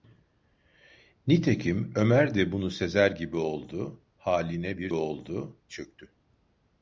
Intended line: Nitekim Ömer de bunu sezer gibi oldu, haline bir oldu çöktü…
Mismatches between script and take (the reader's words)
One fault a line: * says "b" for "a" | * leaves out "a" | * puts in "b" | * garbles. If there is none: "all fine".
all fine